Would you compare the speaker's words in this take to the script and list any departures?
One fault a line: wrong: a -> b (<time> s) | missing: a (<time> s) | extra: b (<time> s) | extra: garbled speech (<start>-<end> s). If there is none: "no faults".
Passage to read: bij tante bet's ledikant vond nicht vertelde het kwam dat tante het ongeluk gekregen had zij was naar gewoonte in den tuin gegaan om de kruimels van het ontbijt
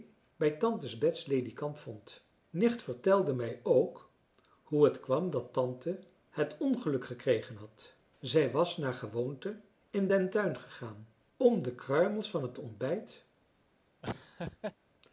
extra: mij ook hoe (3.3 s)